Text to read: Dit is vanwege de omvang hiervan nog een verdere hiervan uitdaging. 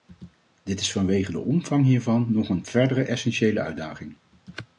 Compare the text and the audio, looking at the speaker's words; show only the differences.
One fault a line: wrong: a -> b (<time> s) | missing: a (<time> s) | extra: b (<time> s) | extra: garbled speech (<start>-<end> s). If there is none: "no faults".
wrong: hiervan -> essentiële (3.0 s)